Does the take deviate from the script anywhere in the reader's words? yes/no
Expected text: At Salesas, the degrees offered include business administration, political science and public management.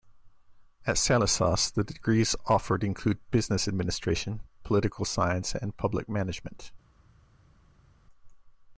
no